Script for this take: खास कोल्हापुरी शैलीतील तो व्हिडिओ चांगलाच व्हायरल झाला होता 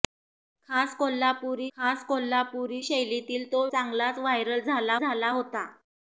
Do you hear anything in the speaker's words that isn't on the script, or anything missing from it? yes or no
yes